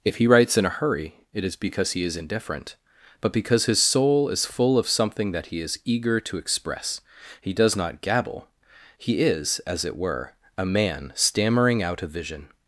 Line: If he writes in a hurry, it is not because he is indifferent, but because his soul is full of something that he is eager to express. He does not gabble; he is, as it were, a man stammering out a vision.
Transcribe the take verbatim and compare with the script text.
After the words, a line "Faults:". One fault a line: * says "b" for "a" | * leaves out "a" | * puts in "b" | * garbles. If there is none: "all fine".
If he writes in a hurry, it is because he is indifferent, but because his soul is full of something that he is eager to express. He does not gabble; he is, as it were, a man stammering out a vision.
Faults:
* leaves out "not"